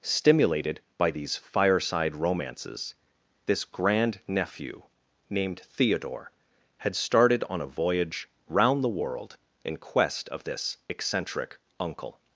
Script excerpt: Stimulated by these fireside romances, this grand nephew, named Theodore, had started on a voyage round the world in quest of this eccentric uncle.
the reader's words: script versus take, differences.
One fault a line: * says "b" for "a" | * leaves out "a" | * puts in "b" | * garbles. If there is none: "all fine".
all fine